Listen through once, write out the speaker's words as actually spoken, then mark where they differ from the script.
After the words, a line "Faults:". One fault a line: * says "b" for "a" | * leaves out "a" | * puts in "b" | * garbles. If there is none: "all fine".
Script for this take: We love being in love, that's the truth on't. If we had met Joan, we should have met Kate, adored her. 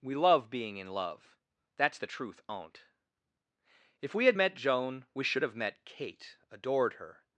We love being in love, that's the truth on't. If we had met Joan, we should have met Kate, adored her.
Faults:
all fine